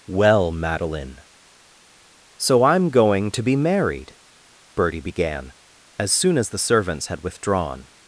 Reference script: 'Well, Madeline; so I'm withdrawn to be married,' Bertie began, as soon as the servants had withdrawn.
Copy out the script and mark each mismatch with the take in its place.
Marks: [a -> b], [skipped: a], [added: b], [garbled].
'Well, Madeline; so I'm [withdrawn -> going] to be married,' Bertie began, as soon as the servants had withdrawn.